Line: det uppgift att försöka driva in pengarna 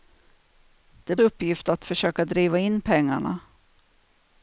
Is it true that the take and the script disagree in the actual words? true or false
false